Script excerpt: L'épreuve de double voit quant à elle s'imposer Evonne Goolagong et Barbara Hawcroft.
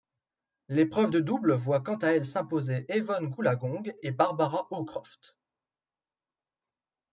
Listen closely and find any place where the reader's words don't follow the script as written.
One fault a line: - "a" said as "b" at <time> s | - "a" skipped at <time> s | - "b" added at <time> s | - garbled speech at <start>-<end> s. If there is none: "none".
none